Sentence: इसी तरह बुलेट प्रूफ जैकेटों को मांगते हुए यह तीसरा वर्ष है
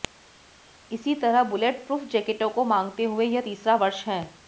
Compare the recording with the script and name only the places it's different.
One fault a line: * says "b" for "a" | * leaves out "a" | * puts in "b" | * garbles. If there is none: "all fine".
all fine